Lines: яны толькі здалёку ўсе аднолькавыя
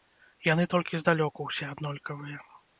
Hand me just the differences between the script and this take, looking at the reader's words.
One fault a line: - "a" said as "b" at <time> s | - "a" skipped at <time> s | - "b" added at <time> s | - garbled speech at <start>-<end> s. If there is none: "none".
none